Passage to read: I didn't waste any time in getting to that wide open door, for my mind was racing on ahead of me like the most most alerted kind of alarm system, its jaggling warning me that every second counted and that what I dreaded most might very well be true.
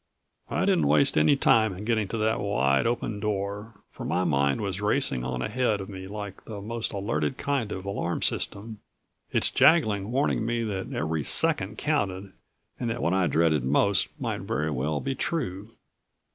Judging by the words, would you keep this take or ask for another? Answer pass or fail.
fail